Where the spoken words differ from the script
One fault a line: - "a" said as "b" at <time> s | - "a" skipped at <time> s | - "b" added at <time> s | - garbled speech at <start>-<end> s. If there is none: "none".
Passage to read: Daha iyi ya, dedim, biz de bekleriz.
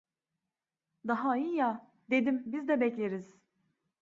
none